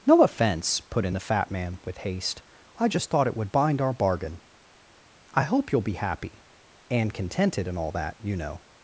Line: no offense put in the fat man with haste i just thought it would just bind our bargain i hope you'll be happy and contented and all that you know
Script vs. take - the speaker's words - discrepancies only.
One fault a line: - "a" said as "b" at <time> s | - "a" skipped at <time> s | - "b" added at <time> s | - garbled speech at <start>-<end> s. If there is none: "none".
- "just" skipped at 3.5 s